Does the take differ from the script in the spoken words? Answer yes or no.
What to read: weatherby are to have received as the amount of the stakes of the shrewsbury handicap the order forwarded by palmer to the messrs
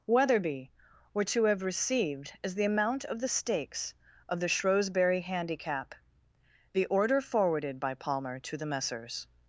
yes